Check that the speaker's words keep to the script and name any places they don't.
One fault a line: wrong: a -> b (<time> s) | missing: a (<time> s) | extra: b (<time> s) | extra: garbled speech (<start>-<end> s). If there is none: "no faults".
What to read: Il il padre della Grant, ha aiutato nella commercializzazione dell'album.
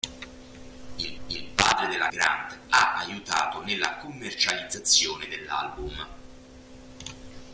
no faults